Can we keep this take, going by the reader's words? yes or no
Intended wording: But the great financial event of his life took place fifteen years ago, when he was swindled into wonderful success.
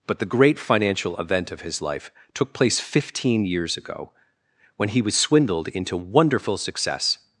yes